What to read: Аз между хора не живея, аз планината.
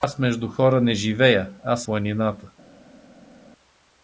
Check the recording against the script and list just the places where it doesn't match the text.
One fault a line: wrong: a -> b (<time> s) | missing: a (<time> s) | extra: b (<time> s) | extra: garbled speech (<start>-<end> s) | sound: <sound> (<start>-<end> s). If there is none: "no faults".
no faults